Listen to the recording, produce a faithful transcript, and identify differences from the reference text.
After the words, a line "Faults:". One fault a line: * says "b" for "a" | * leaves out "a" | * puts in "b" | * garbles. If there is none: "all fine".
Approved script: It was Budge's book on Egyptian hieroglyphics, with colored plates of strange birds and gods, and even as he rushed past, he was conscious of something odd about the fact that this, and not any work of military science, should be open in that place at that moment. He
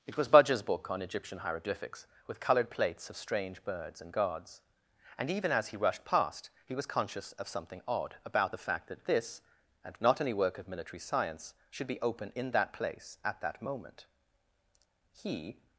It was Budge's book on Egyptian hieroglyphics, with colored plates of strange birds and gods, and even as he rushed past, he was conscious of something odd about the fact that this, and not any work of military science, should be open in that place at that moment. He
Faults:
all fine